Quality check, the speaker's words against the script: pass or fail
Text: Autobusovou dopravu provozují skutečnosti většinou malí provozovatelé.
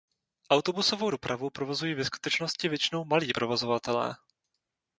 fail